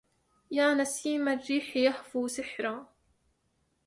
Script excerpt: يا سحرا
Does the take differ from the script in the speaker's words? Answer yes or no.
yes